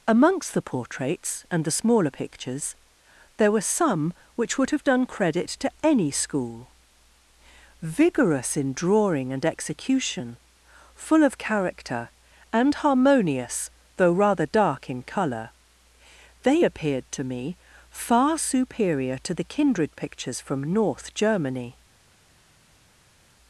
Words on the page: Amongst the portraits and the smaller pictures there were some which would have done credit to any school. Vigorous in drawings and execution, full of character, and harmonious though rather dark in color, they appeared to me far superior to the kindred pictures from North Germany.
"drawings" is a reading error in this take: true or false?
true